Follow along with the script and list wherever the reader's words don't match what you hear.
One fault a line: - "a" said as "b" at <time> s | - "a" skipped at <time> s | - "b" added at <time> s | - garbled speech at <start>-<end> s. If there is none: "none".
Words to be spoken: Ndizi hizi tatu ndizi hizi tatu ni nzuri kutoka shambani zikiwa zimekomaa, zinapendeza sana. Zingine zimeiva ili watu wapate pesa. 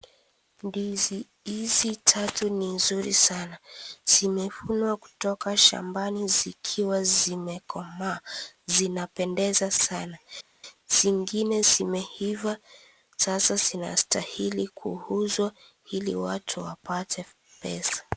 - "ndizi hizi tatu ni nzuri" said as "ni nzuri sana Zimevunwa" at 2.5 s
- "sasa zinastahili kuuzwa" added at 13.1 s